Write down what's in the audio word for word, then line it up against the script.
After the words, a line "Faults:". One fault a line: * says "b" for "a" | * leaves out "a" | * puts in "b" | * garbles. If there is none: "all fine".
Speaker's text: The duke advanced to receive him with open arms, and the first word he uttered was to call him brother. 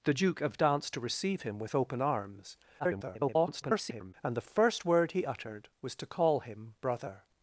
The duke advanced to receive him with open arms, [garbled] and the first word he uttered was to call him brother.
Faults:
* garbles